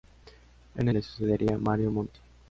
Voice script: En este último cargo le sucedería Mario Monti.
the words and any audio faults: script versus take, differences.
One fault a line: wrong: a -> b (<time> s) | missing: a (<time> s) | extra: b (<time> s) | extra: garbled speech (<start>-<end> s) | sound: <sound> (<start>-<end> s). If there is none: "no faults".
missing: este último cargo (0.9 s)